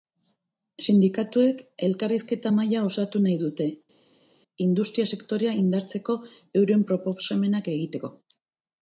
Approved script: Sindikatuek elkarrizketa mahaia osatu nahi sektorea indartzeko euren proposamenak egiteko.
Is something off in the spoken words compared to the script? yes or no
yes